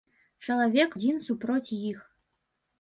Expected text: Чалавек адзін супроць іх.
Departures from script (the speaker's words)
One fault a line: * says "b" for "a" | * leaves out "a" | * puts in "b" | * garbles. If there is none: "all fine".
all fine